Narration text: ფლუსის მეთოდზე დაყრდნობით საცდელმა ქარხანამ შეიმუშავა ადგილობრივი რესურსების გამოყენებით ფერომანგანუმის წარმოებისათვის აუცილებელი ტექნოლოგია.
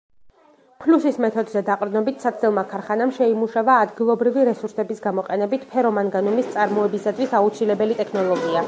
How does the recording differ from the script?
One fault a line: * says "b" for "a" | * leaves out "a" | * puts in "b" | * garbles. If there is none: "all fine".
all fine